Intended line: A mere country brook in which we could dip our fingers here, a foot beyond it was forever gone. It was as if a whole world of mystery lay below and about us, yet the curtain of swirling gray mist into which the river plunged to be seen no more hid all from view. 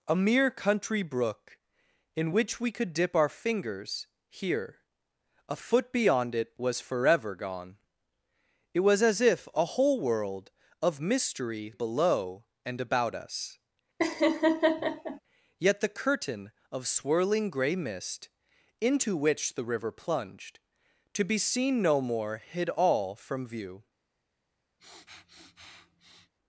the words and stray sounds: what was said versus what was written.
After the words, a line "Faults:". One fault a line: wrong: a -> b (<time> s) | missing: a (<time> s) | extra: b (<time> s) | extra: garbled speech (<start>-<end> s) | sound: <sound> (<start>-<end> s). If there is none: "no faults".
A mere country brook in which we could dip our fingers here, a foot beyond it was forever gone. It was as if a whole world of mystery below and about us, yet the curtain of swirling gray mist into which the river plunged to be seen no more hid all from view.
Faults:
missing: lay (11.7 s)
sound: laugh (14.0-15.2 s)
sound: sniff (24.8-26.3 s)